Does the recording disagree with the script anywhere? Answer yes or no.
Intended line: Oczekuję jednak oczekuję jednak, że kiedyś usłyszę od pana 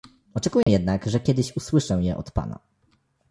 yes